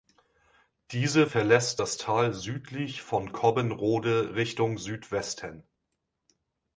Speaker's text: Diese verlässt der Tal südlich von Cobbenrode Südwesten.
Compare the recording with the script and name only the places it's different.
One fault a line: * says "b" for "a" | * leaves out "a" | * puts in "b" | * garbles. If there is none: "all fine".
* says "das" for "der"
* puts in "Richtung"